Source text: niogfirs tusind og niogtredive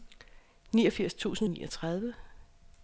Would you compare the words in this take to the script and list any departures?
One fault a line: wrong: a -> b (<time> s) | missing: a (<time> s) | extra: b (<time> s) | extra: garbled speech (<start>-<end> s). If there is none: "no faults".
no faults